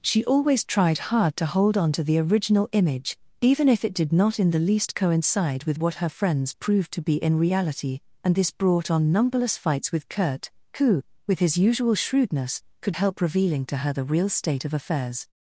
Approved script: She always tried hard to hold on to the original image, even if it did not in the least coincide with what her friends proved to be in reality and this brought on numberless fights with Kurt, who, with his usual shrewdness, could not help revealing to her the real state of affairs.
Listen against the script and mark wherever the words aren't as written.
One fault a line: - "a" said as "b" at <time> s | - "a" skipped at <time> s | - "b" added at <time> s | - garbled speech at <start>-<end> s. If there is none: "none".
- "not" skipped at 13.0 s